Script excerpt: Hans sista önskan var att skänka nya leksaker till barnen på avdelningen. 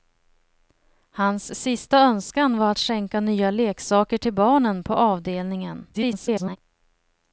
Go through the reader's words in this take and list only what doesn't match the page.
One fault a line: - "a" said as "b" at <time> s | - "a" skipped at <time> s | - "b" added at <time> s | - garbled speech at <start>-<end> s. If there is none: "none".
- garbled speech at 5.9-6.6 s